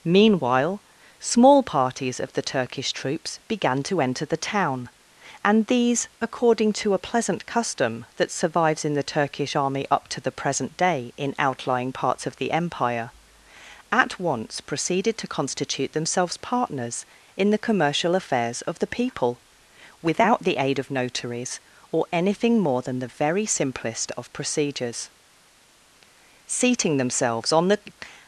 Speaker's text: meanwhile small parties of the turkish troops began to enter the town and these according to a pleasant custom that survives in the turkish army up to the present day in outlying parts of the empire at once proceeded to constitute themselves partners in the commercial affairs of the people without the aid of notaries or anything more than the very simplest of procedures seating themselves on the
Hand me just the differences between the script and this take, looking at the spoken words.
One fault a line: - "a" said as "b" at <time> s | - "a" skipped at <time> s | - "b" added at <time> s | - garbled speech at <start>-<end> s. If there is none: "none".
none